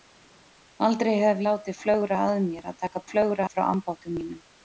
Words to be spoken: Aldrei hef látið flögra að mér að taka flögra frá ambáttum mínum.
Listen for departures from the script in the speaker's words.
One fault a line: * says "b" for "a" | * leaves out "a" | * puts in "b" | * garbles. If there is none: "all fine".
all fine